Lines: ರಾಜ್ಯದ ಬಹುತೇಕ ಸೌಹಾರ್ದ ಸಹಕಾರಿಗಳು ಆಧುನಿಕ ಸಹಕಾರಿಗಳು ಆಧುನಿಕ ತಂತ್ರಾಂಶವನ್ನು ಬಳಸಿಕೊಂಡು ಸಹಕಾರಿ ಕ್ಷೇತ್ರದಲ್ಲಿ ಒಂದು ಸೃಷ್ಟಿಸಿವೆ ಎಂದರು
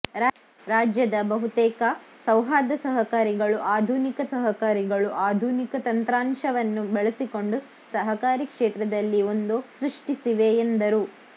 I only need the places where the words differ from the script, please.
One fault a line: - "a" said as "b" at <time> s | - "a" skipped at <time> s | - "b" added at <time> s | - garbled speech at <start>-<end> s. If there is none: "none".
none